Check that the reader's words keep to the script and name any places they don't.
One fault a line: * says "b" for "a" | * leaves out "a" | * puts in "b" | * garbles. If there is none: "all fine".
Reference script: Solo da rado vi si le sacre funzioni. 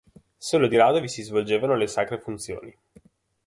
* says "di" for "da"
* puts in "svolgevano"